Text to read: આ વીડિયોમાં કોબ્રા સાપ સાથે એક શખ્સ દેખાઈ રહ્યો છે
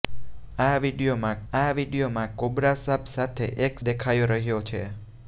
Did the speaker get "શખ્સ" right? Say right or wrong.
wrong